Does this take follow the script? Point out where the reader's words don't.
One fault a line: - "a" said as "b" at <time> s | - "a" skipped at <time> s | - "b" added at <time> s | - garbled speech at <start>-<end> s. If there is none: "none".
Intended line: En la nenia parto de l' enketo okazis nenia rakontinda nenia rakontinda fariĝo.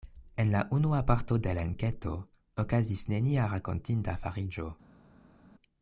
- "nenia" said as "unua" at 0.8 s
- "nenia rakontinda" skipped at 4.2 s